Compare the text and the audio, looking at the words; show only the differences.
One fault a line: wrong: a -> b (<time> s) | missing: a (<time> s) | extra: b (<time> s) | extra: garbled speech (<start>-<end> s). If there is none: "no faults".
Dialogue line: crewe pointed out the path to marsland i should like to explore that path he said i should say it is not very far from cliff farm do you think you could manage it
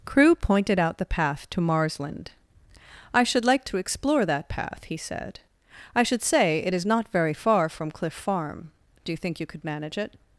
no faults